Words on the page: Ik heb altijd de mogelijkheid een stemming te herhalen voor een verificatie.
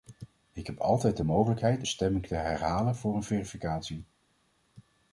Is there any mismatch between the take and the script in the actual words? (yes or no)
yes